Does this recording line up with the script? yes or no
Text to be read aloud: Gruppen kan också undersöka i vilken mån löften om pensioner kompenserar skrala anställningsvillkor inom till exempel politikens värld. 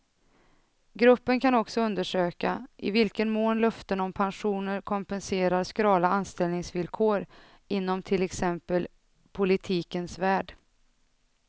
yes